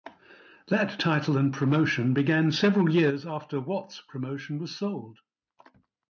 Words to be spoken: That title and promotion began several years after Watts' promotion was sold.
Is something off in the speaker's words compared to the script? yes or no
no